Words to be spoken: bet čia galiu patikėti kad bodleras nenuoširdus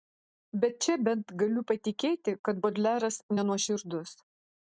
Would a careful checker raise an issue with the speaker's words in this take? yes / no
yes